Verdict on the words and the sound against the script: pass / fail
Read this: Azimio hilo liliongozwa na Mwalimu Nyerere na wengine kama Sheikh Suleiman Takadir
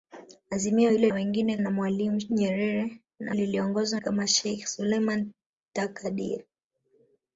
fail